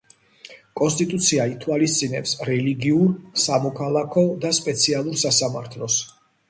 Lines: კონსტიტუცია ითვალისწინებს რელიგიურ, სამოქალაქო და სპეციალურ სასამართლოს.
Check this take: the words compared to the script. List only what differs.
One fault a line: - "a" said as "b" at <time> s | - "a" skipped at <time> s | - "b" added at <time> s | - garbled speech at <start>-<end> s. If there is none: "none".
none